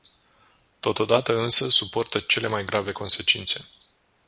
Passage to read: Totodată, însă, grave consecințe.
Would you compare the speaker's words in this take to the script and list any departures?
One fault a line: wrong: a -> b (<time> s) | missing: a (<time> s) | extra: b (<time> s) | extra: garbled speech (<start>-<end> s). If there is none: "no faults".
extra: suportă cele mai (1.7 s)